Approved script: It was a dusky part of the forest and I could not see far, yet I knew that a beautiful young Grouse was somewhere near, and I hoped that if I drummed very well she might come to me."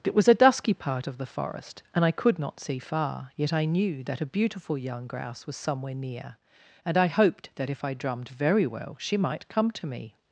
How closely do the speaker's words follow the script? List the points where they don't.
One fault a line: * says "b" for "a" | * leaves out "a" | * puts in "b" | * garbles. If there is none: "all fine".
all fine